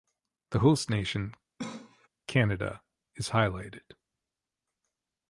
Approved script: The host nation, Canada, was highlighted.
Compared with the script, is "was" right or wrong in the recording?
wrong